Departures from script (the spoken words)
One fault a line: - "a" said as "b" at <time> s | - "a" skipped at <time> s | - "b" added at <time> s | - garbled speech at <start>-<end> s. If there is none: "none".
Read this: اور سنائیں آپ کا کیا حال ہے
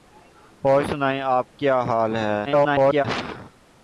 - "کا" skipped at 1.5 s
- garbled speech at 2.5-3.0 s